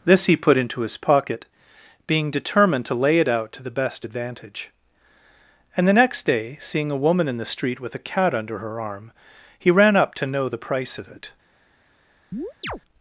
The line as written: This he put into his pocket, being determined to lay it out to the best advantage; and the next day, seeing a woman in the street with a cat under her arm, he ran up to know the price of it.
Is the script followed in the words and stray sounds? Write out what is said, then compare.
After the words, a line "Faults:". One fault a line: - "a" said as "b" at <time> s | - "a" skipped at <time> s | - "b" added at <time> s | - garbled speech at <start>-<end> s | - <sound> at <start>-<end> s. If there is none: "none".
This he put into his pocket, being determined to lay it out to the best advantage; and the next day, seeing a woman in the street with a cat under her arm, he ran up to know the price of it.
Faults:
- chirp at 12.3-12.8 s